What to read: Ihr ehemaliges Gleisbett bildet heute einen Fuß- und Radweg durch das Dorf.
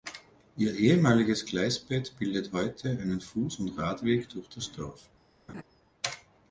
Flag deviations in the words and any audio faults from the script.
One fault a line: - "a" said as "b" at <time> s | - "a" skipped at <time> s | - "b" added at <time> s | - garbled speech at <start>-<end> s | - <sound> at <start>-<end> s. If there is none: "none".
- laugh at 5.5-5.6 s